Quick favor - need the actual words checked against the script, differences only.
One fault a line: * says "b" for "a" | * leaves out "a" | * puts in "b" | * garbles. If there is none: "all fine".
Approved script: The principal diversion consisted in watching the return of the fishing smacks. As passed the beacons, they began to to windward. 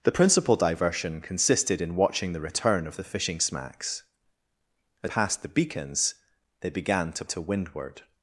all fine